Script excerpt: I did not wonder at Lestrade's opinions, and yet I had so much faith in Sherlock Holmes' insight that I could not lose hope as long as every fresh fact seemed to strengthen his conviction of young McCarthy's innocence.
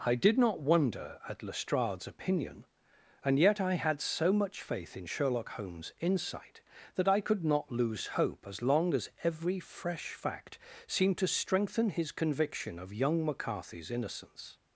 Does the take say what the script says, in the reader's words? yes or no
no